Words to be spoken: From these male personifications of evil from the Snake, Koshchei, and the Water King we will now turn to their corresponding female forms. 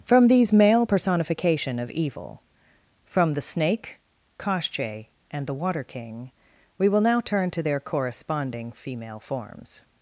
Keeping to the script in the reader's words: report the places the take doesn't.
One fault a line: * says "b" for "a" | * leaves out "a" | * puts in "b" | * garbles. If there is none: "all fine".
* says "personification" for "personifications"